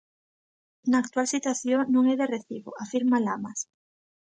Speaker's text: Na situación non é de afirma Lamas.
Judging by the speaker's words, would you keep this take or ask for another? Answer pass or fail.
fail